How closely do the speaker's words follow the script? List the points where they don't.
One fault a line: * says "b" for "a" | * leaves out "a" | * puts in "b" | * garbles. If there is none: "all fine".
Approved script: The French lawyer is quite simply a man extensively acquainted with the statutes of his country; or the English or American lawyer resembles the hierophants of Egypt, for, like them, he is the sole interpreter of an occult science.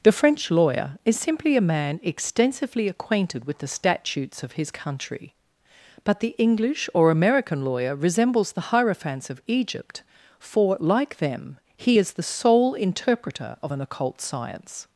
* leaves out "quite"
* says "but" for "or"